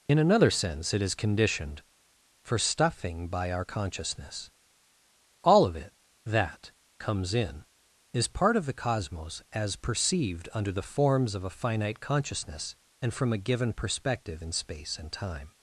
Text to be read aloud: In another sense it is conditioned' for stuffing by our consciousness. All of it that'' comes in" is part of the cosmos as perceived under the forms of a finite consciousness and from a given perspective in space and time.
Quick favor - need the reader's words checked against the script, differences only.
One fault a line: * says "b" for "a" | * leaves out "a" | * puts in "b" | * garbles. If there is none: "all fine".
all fine